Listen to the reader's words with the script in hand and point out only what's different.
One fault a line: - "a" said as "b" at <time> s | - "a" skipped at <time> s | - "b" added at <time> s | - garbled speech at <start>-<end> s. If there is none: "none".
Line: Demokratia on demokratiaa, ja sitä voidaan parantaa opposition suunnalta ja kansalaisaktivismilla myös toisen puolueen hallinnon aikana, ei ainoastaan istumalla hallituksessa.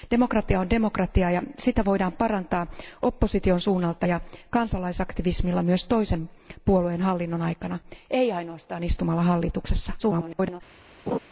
- garbled speech at 10.0-10.6 s